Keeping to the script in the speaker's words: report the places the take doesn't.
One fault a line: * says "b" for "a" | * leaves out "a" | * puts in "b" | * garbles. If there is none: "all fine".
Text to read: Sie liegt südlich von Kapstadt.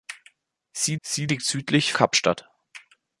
* puts in "sie"
* leaves out "von"